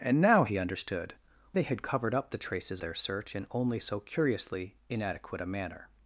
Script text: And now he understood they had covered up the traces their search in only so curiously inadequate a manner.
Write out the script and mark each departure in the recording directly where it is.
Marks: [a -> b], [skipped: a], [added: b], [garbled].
And now he understood they had covered up the traces their search in only so curiously inadequate a manner.